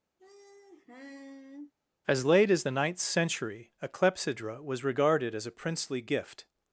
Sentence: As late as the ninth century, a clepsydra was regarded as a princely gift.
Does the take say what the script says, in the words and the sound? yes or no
no